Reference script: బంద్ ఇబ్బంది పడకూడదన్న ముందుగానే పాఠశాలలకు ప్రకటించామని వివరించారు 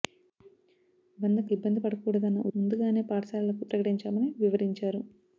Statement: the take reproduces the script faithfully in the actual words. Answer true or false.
true